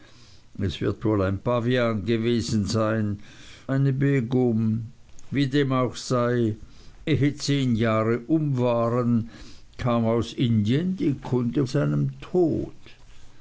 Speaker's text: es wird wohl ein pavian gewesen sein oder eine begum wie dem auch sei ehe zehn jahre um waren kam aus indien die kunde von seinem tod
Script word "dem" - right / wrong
right